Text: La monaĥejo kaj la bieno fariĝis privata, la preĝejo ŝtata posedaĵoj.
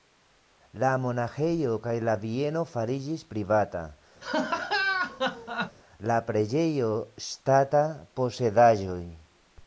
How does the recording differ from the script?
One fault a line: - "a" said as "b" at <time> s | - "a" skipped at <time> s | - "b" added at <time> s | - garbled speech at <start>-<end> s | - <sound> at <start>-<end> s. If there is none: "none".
- laugh at 4.2-5.8 s